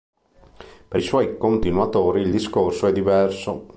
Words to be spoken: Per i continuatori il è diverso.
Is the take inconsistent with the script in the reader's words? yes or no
yes